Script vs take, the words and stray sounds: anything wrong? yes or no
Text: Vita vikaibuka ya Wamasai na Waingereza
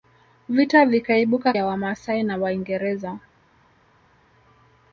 no